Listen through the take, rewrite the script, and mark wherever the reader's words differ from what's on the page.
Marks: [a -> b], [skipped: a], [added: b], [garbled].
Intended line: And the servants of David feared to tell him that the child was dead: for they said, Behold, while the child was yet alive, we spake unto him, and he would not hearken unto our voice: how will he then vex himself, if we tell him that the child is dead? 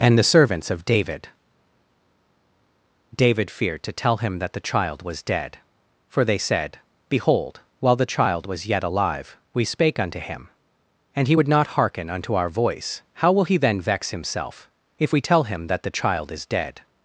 And the servants of David [added: David] feared to tell him that the child was dead: for they said, Behold, while the child was yet alive, we spake unto him, and he would not hearken unto our voice: how will he then vex himself, if we tell him that the child is dead?